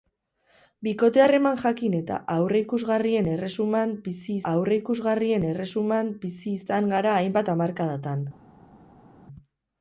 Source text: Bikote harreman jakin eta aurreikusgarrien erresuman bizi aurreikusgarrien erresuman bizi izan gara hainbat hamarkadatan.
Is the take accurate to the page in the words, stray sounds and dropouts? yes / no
yes